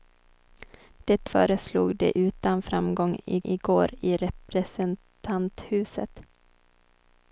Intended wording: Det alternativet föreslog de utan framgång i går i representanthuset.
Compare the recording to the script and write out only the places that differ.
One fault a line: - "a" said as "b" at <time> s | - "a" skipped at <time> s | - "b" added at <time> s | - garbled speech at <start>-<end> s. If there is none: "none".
- "alternativet" skipped at 1.3 s
- "i" added at 3.4 s